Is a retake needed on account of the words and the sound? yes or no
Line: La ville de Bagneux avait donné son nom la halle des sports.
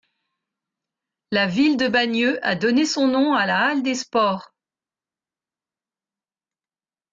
yes